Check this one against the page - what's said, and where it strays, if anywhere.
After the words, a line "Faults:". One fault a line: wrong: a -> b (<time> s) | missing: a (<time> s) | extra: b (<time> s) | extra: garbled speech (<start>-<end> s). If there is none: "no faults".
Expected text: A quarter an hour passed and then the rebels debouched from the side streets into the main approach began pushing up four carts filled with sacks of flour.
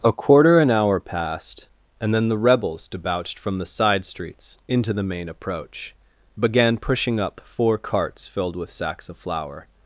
A quarter an hour passed and then the rebels debouched from the side streets into the main approach began pushing up four carts filled with sacks of flour.
Faults:
no faults